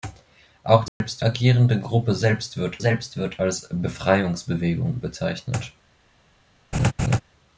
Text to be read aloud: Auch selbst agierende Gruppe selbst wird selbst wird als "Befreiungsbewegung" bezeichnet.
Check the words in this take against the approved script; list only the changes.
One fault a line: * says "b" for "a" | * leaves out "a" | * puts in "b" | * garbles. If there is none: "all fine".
all fine